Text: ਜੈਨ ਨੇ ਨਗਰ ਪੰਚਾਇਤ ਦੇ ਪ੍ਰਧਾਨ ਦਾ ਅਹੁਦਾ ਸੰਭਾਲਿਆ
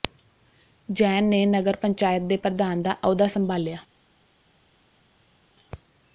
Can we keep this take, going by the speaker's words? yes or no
yes